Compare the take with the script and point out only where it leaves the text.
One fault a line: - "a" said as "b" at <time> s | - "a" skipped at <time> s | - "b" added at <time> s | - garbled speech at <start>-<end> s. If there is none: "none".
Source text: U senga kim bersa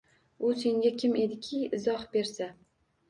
- "ediki izoh" added at 1.2 s